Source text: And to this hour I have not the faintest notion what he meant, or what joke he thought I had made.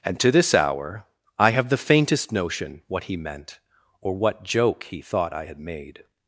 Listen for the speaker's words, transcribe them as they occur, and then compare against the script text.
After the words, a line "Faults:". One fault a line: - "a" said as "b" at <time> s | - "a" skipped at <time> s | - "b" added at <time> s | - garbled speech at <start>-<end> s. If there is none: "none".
And to this hour I have the faintest notion what he meant, or what joke he thought I had made.
Faults:
- "not" skipped at 1.7 s